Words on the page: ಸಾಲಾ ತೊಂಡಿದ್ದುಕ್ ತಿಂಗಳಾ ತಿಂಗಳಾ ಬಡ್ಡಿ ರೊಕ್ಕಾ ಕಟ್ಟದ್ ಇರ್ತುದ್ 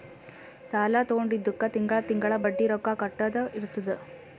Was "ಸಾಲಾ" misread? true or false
false